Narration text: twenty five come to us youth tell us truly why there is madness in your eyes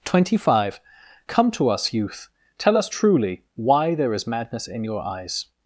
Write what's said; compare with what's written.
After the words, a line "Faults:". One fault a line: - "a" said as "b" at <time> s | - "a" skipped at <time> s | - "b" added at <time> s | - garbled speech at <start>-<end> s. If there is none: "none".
twenty five come to us youth tell us truly why there is madness in your eyes
Faults:
none